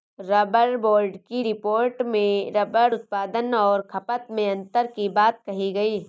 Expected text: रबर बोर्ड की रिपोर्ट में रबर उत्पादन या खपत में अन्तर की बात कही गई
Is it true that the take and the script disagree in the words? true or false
true